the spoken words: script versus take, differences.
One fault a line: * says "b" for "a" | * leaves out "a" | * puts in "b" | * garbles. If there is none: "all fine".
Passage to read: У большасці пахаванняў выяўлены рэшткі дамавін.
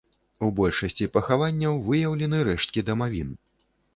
all fine